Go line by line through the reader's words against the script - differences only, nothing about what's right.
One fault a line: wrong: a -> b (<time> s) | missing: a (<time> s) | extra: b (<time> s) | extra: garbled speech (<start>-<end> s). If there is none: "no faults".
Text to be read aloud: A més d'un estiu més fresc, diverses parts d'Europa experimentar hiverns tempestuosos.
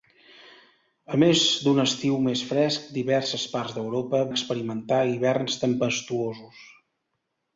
no faults